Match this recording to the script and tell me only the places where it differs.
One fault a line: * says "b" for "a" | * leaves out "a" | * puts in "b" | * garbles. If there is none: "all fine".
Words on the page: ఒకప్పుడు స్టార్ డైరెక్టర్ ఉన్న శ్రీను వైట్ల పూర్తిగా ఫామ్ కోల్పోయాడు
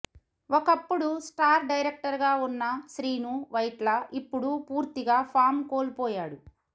* puts in "గా"
* puts in "ఇప్పుడు"